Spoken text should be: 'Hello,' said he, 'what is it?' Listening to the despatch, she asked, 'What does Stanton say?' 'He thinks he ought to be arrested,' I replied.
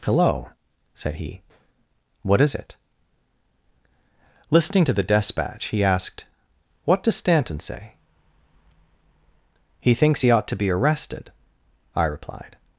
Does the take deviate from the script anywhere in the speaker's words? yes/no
yes